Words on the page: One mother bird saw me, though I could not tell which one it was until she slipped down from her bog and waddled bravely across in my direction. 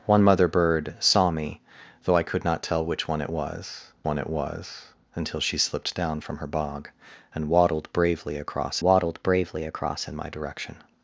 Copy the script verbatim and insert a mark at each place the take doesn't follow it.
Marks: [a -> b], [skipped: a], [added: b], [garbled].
One mother bird saw me, though I could not tell which one it was [added: one it was] until she slipped down from her bog and waddled bravely across [added: waddled bravely across] in my direction.